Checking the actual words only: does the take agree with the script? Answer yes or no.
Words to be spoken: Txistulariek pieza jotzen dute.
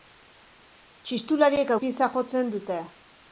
yes